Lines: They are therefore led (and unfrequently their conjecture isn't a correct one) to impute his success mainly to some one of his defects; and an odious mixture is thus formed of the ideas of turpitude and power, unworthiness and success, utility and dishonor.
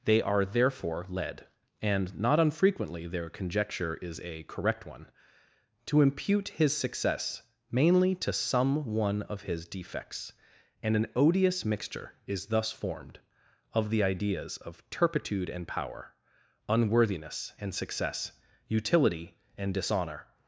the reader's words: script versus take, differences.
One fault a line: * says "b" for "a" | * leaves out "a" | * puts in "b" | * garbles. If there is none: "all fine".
* puts in "not"
* says "is" for "isn't"